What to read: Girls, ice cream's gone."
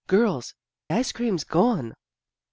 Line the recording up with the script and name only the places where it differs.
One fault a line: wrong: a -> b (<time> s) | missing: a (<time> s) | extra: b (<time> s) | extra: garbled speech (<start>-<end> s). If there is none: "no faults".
no faults